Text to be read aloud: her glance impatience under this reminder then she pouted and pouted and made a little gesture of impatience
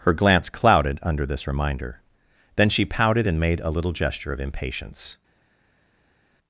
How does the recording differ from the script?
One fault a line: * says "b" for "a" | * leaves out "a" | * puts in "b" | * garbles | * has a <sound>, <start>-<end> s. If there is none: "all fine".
* says "clouded" for "impatience"
* leaves out "pouted and"